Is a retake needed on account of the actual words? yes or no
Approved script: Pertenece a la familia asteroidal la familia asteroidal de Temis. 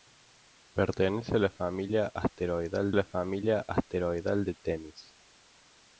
no